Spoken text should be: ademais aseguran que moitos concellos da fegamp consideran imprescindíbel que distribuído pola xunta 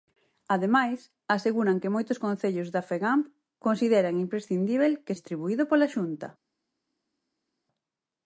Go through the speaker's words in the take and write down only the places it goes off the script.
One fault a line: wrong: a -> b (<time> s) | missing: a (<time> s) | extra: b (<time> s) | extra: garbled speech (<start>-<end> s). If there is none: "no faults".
no faults